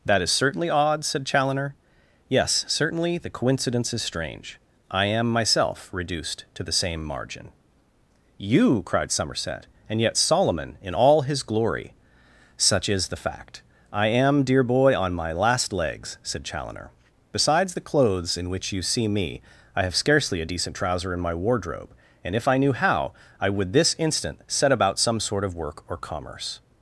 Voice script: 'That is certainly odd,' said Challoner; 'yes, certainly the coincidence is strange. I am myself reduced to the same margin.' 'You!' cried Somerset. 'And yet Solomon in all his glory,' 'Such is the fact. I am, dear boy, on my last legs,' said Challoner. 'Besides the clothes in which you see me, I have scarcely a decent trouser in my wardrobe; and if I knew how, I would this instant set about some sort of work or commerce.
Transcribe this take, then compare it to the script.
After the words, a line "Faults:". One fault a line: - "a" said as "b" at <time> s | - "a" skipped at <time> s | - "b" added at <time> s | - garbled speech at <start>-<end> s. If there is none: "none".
'That is certainly odd,' said Challoner; 'yes, certainly the coincidence is strange. I am myself reduced to the same margin.' 'You!' cried Somerset. 'And yet Solomon in all his glory,' 'Such is the fact. I am, dear boy, on my last legs,' said Challoner. 'Besides the clothes in which you see me, I have scarcely a decent trouser in my wardrobe; and if I knew how, I would this instant set about some sort of work or commerce.
Faults:
none